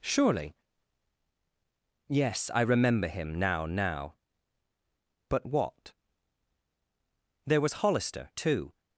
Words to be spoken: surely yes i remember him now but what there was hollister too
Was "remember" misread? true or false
false